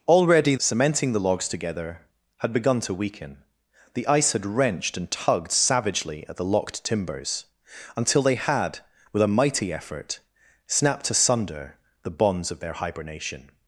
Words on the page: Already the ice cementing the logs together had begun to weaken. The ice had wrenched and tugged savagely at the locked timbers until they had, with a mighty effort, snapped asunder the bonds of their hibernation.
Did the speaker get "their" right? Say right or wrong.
right